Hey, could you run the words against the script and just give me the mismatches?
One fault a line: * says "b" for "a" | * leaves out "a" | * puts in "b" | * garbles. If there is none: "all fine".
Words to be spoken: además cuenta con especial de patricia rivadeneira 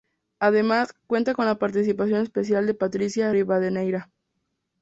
* puts in "la participación"